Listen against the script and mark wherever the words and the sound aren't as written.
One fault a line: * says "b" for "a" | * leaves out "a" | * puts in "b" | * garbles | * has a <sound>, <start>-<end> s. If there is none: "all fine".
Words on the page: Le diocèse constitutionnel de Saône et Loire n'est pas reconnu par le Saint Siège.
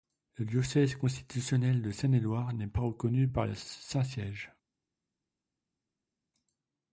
all fine